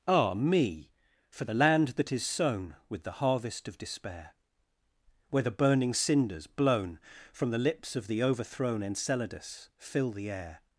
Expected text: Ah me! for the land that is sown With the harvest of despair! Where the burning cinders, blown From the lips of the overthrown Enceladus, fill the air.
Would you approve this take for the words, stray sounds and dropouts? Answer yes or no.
yes